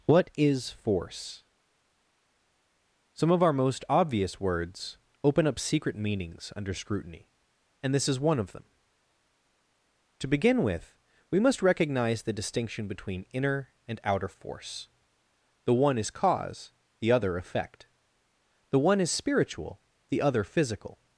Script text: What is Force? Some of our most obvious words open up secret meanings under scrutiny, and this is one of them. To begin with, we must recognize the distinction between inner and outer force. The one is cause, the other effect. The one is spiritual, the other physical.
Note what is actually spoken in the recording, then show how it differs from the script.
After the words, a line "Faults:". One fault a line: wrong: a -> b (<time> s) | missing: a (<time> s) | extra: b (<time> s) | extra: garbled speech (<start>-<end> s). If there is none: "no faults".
What is Force? Some of our most obvious words open up secret meanings under scrutiny, and this is one of them. To begin with, we must recognize the distinction between inner and outer force. The one is cause, the other effect. The one is spiritual, the other physical.
Faults:
no faults